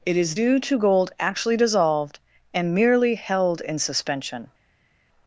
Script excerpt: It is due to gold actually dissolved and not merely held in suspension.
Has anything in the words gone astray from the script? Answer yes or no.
yes